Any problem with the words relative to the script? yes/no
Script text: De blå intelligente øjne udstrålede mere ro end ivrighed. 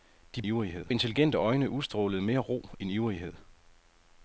yes